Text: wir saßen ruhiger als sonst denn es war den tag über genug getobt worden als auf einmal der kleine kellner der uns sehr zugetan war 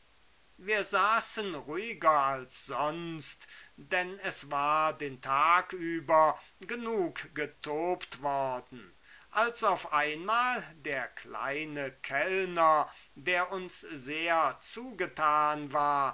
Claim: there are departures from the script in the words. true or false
false